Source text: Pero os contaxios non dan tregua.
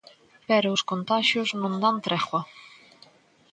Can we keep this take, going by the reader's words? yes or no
yes